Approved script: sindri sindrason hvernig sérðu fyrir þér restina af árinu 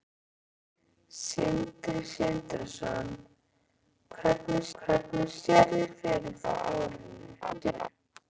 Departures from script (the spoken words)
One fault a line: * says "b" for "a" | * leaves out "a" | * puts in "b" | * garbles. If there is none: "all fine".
* puts in "hvernig"
* leaves out "þér restina"
* garbles